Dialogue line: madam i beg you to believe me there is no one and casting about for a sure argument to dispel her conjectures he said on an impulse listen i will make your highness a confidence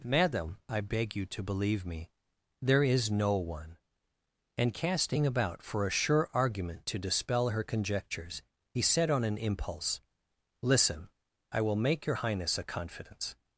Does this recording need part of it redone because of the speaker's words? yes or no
no